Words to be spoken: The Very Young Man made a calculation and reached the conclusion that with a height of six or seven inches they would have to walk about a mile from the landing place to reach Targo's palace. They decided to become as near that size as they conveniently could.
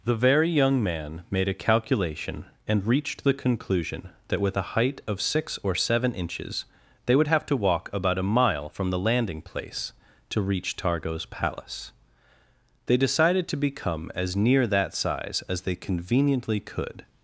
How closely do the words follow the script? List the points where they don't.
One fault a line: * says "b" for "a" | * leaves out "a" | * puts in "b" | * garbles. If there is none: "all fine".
all fine